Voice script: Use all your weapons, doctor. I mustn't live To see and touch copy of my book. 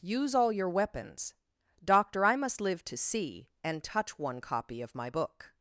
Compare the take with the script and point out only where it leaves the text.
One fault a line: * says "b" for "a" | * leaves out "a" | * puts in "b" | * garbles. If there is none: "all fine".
* says "must" for "mustn't"
* puts in "one"